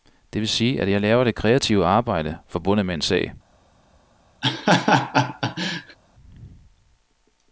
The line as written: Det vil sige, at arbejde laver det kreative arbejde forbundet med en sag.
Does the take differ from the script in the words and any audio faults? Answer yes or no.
yes